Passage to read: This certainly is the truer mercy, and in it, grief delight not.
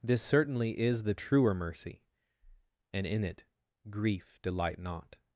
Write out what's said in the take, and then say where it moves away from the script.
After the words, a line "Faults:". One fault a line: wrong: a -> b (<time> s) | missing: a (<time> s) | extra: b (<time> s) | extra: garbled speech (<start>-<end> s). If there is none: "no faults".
This certainly is the truer mercy, and in it, grief delight not.
Faults:
no faults